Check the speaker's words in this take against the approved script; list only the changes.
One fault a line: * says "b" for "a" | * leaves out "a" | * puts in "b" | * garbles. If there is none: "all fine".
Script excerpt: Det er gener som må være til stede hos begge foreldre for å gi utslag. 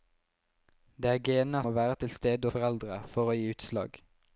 * leaves out "som"
* leaves out "hos begge"